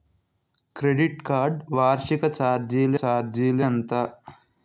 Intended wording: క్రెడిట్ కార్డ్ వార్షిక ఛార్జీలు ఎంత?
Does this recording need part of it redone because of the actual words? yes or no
yes